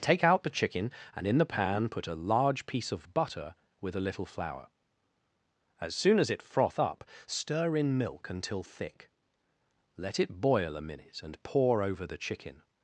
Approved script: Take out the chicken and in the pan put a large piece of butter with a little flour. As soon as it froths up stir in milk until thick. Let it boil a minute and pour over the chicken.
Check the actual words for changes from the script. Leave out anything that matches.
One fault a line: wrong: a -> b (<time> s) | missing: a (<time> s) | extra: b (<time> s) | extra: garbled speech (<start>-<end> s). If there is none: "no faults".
wrong: froths -> froth (6.4 s)